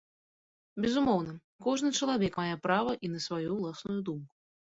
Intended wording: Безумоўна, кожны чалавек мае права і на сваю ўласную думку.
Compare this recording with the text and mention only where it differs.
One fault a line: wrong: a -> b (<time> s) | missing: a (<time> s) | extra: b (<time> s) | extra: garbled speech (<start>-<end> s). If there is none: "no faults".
no faults